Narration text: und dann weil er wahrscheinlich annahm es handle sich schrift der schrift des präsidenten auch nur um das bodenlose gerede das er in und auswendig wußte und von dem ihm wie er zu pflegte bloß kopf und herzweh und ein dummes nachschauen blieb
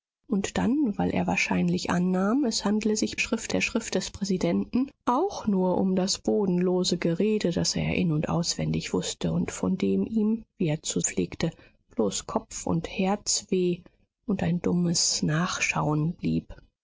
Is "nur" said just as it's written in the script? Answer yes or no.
yes